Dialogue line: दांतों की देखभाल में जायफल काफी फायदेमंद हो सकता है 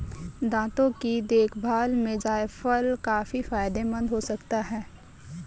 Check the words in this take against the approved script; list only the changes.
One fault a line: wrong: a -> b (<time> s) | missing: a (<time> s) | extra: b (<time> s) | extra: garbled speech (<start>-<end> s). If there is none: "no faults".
no faults